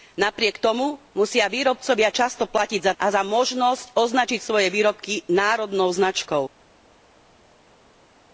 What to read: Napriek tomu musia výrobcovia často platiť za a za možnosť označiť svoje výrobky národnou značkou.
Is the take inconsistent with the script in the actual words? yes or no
no